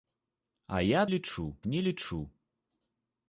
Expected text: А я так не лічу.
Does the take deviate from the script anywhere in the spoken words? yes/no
yes